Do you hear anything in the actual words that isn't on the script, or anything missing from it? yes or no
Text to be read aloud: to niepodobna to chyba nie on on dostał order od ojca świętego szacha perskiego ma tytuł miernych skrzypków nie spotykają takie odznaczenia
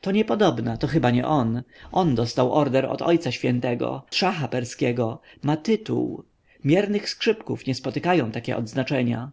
no